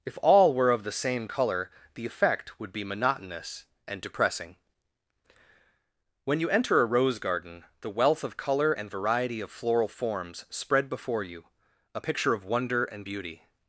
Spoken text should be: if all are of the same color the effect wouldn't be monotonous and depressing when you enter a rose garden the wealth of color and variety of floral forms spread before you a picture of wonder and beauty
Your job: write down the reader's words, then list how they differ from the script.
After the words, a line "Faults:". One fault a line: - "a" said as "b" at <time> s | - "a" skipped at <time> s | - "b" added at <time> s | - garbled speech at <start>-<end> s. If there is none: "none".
if all were of the same color the effect would be monotonous and depressing when you enter a rose garden the wealth of color and variety of floral forms spread before you a picture of wonder and beauty
Faults:
- "are" said as "were" at 0.5 s
- "wouldn't" said as "would" at 2.6 s